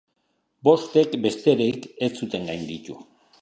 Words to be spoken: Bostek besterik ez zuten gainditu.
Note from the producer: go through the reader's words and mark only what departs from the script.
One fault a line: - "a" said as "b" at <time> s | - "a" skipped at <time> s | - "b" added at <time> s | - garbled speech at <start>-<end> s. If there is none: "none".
none